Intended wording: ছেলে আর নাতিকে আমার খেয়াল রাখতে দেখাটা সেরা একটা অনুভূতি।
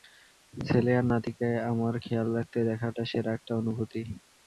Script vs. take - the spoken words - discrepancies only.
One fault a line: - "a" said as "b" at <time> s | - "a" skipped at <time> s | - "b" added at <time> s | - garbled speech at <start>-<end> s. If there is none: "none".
none